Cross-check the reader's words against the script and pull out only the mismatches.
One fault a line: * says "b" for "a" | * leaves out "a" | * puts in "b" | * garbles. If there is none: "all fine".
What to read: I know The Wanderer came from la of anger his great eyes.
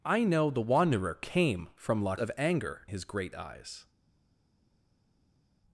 all fine